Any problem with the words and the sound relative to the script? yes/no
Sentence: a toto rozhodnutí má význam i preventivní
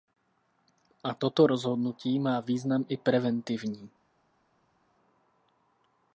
no